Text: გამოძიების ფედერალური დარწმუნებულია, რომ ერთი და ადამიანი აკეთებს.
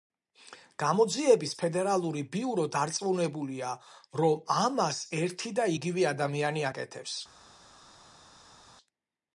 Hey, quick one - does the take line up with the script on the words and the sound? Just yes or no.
no